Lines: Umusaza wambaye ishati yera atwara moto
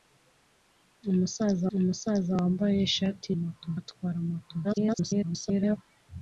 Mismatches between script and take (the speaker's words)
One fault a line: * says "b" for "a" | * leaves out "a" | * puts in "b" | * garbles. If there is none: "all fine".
* puts in "umusaza"
* says "moto" for "yera"
* garbles